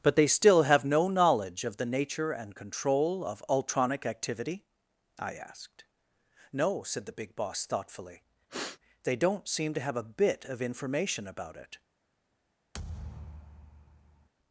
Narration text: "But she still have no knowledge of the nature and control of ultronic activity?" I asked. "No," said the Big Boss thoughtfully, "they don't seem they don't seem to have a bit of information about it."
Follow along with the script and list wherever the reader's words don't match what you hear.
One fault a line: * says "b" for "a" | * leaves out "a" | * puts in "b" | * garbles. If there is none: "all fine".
* says "they" for "she"
* leaves out "they don't seem"